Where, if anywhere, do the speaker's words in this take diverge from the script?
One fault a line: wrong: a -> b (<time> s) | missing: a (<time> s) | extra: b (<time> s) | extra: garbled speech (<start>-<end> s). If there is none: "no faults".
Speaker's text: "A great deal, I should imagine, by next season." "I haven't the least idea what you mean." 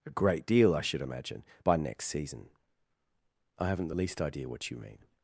no faults